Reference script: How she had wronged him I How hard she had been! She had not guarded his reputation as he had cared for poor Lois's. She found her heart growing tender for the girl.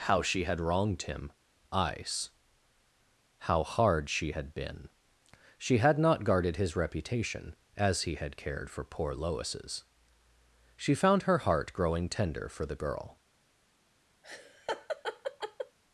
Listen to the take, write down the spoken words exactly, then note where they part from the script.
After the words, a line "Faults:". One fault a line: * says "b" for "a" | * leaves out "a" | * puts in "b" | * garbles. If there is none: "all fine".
How she had wronged him ice How hard she had been! She had not guarded his reputation as he had cared for poor Lois's. She found her heart growing tender for the girl.
Faults:
* says "ice" for "I"